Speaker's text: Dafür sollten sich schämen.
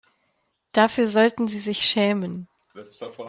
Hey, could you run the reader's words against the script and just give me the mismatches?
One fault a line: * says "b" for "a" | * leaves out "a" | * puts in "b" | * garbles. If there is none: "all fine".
* puts in "sie"